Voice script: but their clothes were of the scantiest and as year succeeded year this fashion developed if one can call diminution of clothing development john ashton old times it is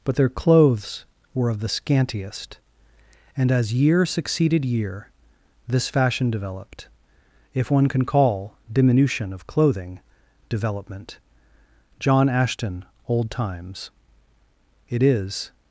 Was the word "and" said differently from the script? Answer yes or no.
no